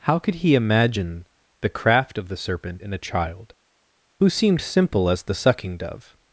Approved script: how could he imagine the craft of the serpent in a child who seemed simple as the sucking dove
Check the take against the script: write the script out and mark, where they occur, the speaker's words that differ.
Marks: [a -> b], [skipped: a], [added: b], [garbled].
how could he imagine the craft of the serpent in a child who seemed simple as the sucking dove